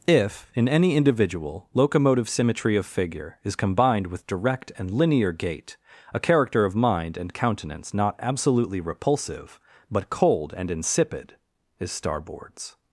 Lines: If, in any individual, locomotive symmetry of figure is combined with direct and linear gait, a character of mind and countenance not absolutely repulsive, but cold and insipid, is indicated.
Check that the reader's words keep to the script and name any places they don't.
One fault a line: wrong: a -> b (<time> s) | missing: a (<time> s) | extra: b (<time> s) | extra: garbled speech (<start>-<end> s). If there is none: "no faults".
wrong: indicated -> starboards (11.9 s)